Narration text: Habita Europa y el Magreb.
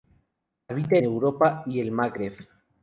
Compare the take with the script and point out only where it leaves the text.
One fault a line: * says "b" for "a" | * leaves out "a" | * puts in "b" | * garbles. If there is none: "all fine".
all fine